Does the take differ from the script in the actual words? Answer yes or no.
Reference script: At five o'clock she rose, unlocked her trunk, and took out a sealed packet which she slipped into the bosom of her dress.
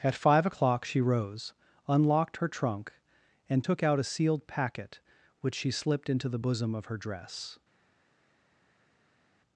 no